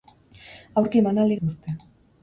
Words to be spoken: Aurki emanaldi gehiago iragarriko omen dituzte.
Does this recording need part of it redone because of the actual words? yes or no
yes